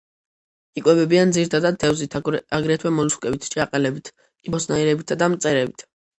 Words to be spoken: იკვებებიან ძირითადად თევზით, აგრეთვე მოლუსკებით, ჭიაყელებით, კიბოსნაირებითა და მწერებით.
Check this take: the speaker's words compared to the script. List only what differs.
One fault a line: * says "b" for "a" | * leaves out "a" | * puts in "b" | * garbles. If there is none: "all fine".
all fine